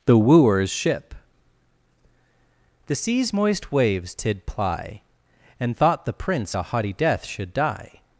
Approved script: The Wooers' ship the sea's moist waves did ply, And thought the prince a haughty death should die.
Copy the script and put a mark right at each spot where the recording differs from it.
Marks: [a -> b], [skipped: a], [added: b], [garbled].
The Wooers' ship the sea's moist waves did ply, And thought the prince a haughty death should die.